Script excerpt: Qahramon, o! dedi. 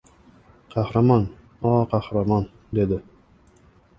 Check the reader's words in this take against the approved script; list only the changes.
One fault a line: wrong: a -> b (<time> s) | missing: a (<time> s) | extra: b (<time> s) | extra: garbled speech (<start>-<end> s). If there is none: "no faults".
extra: qahramon (1.9 s)